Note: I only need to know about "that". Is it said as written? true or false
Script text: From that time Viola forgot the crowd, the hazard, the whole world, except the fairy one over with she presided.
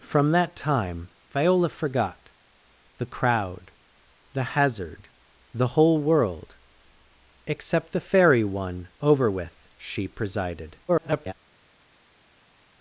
true